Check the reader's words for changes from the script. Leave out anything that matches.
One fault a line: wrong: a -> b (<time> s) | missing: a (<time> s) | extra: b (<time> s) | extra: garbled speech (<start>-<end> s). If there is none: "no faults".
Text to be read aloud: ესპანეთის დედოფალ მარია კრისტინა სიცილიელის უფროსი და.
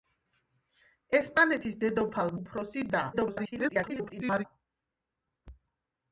missing: მარია კრისტინა სიცილიელის (2.3 s)
extra: garbled speech (3.1-4.4 s)